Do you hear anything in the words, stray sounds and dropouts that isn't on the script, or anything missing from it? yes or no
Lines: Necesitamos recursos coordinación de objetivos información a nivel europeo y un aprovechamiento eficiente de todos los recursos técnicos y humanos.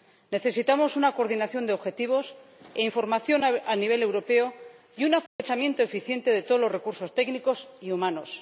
yes